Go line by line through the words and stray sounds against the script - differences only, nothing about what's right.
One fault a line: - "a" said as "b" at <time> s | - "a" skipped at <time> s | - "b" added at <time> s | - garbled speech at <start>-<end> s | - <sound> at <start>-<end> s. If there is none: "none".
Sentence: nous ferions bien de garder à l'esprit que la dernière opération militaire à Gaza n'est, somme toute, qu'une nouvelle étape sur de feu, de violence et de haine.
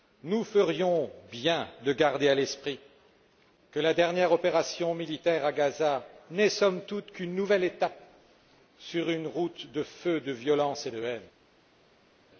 - "une route" added at 9.1 s